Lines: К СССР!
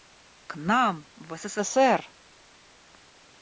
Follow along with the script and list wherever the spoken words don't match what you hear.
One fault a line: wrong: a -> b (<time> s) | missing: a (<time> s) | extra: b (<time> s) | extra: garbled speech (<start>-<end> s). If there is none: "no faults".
extra: нам в (0.6 s)